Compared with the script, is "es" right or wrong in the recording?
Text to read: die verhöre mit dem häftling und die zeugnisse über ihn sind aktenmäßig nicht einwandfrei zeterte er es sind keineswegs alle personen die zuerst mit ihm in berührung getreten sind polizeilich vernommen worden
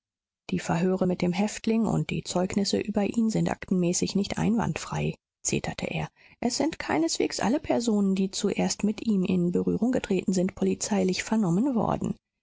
right